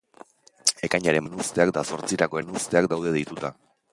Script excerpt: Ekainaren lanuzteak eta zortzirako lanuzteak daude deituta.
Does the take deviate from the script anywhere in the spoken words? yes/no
no